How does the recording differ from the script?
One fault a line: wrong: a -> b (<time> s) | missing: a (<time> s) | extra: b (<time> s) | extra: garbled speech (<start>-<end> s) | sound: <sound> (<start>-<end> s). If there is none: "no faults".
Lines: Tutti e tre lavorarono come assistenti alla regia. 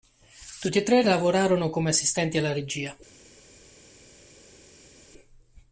no faults